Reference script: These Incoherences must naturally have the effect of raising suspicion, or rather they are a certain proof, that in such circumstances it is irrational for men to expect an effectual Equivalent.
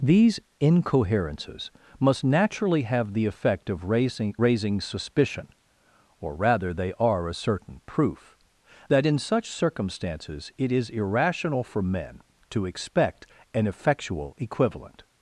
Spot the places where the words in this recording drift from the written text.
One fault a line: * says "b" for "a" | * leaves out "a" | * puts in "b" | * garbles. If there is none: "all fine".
* puts in "raising"